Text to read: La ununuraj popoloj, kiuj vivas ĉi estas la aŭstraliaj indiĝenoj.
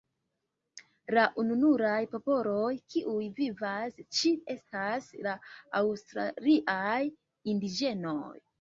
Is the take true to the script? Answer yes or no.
yes